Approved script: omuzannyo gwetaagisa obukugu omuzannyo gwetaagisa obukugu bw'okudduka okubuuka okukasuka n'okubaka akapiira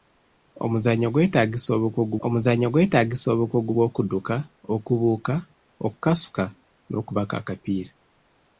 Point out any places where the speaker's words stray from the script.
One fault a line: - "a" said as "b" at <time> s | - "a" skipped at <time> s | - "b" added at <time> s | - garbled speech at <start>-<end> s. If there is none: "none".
none